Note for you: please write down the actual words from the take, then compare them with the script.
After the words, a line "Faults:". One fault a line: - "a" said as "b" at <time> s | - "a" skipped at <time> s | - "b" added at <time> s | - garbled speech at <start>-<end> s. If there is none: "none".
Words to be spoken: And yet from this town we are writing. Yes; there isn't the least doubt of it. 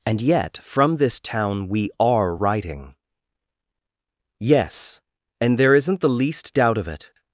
And yet from this town we are writing. Yes; and there isn't the least doubt of it.
Faults:
- "and" added at 5.4 s